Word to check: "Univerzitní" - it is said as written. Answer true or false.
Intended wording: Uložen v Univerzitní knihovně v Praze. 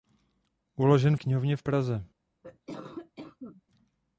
false